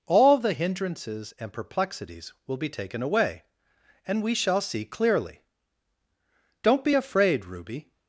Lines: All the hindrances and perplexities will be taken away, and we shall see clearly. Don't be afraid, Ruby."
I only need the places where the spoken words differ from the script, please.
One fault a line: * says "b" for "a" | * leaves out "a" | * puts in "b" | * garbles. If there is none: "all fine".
all fine